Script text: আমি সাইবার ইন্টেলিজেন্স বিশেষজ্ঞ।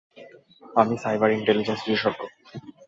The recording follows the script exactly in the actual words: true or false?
true